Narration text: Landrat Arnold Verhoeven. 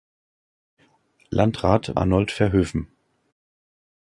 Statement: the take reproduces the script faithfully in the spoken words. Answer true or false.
true